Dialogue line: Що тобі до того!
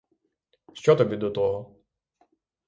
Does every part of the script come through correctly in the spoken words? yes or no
yes